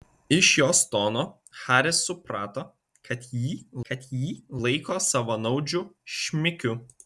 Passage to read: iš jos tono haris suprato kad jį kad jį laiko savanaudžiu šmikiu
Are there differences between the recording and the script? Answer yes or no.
no